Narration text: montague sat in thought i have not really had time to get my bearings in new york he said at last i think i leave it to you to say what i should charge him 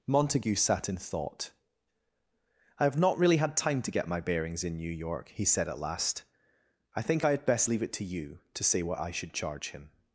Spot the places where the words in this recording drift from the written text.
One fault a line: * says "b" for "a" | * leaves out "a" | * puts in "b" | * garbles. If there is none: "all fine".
* puts in "had best"